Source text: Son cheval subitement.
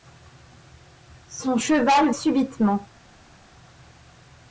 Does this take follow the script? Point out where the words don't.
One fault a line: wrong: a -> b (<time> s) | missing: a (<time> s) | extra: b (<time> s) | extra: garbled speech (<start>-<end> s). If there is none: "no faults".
no faults